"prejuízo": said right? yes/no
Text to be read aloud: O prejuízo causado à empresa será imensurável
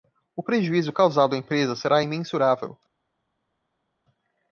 yes